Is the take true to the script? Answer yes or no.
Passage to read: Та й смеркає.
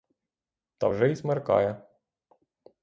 no